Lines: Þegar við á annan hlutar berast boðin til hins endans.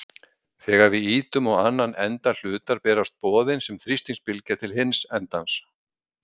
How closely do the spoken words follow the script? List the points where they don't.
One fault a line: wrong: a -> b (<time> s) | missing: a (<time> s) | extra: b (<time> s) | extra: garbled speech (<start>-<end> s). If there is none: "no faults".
extra: ýtum (1.1 s)
extra: enda (2.0 s)
extra: sem þrýstingsbylgja (3.7 s)